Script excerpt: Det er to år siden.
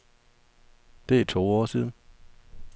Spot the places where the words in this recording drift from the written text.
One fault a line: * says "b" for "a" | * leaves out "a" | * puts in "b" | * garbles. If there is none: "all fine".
all fine